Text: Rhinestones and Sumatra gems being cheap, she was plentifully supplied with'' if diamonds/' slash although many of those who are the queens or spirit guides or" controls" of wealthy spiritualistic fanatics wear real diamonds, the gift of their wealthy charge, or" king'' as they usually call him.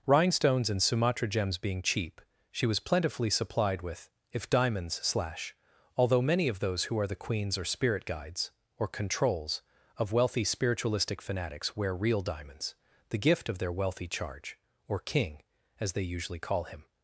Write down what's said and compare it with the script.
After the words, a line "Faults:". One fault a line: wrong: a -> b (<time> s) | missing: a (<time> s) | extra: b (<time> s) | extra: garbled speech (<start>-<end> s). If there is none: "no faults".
Rhinestones and Sumatra gems being cheap, she was plentifully supplied with'' if diamonds/' slash although many of those who are the queens or spirit guides or" controls" of wealthy spiritualistic fanatics wear real diamonds, the gift of their wealthy charge, or" king'' as they usually call him.
Faults:
no faults